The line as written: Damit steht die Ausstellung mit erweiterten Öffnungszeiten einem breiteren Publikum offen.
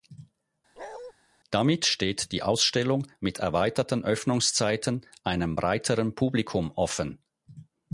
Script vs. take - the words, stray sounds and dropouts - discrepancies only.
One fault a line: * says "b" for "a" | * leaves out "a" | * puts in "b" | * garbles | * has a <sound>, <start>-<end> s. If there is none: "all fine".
* has a bark, 0.8-1.1 s